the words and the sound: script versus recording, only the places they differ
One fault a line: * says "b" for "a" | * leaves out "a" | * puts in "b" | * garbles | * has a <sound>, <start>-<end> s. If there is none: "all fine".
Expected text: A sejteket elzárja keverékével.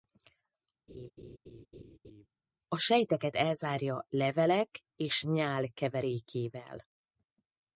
* has a laugh, 0.9-2.3 s
* puts in "levelek és nyál"